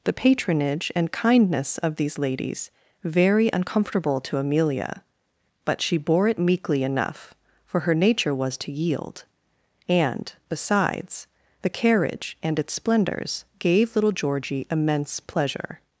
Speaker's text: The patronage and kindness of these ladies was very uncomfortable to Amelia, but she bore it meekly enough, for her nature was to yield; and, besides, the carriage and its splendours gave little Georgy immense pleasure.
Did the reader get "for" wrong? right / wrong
right